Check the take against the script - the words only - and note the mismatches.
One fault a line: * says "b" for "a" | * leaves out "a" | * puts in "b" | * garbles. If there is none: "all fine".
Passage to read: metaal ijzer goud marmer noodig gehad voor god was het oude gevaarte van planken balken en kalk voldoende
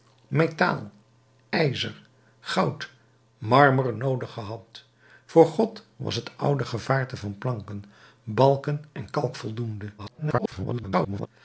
* garbles